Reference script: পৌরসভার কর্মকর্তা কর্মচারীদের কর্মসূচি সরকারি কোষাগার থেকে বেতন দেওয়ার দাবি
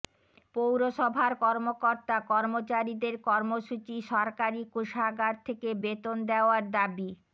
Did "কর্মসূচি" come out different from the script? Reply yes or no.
no